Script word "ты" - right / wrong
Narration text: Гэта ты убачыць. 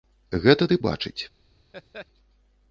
right